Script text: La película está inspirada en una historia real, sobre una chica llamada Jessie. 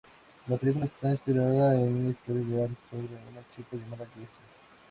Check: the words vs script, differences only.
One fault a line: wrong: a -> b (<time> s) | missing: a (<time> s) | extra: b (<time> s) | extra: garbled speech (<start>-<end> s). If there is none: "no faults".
no faults